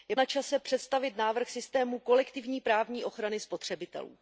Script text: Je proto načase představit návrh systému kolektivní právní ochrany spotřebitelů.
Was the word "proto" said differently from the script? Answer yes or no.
yes